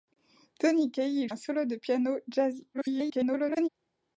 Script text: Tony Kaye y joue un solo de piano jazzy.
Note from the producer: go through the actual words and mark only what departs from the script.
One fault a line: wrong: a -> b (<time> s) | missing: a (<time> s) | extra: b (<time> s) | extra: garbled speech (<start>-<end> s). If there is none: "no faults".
missing: joue (1.3 s)
extra: garbled speech (2.7-3.7 s)